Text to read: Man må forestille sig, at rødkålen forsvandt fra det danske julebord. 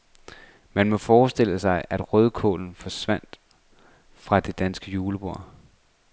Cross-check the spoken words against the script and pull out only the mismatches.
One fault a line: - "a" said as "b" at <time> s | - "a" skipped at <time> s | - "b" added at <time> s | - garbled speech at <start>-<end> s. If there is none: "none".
none